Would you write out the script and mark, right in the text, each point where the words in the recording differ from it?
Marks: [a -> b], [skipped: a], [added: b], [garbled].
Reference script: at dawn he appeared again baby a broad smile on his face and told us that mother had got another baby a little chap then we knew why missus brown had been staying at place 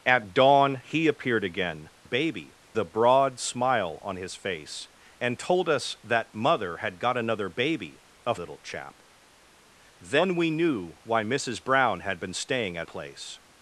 at dawn he appeared again baby a broad smile on his face and told us that mother had got another baby a little chap then we knew why missus brown had been staying at place